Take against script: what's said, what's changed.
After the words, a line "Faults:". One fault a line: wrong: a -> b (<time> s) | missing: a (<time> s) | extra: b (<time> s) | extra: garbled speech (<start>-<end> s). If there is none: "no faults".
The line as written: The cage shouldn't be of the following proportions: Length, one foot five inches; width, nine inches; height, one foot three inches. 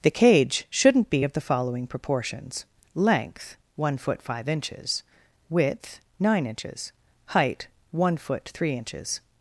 The cage shouldn't be of the following proportions: Length, one foot five inches; width, nine inches; height, one foot three inches.
Faults:
no faults